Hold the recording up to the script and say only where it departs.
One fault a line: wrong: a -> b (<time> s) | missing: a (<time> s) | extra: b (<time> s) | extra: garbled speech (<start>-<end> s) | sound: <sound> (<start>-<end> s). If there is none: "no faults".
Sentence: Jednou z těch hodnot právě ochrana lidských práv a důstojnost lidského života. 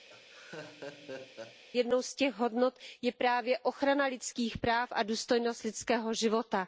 sound: laugh (0.1-1.6 s)
extra: je (3.0 s)